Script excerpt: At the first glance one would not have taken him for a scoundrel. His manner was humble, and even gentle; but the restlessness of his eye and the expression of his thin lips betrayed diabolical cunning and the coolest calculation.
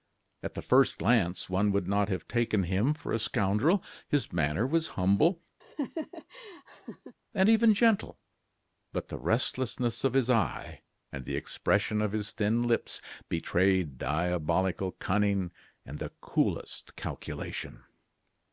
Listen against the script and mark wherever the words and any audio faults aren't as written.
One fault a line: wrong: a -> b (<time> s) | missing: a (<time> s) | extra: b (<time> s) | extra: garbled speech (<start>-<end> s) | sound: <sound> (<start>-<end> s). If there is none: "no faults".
sound: laugh (5.6-7.2 s)